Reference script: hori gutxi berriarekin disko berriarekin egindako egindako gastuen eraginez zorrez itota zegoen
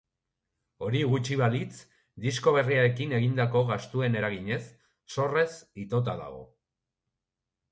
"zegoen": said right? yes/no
no